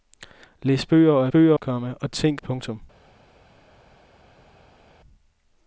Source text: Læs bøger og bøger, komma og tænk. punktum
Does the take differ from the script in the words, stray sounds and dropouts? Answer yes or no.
no